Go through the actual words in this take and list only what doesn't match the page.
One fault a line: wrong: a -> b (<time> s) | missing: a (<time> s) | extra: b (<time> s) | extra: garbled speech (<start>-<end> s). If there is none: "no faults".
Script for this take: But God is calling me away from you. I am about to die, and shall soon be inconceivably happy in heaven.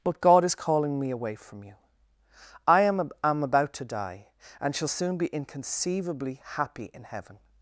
extra: am (3.2 s)